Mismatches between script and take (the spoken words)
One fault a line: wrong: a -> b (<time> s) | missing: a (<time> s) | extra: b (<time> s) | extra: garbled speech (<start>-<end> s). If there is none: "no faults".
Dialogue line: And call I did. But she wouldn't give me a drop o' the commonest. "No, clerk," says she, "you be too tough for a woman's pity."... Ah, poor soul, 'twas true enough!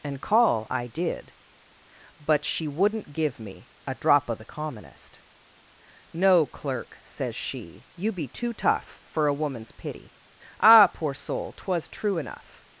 no faults